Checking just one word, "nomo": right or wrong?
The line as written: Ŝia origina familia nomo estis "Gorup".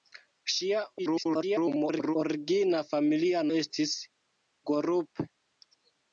wrong